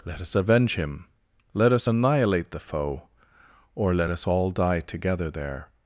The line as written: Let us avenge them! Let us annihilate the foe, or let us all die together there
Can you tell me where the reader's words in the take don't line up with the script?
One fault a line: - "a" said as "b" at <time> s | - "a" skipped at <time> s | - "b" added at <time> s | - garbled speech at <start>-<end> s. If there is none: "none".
- "them" said as "him" at 0.8 s